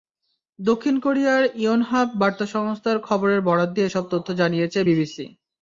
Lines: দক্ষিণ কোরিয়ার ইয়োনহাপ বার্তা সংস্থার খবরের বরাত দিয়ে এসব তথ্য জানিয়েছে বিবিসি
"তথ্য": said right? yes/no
yes